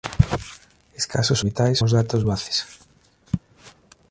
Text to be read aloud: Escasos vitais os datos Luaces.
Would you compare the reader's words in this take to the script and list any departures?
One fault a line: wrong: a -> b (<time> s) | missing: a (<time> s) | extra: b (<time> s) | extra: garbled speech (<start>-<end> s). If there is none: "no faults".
no faults